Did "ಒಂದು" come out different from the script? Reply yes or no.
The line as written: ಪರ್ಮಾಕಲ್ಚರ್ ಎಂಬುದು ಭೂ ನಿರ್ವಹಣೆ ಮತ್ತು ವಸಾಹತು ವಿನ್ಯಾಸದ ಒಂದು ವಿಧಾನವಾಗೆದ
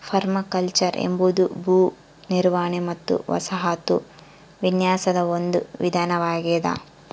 no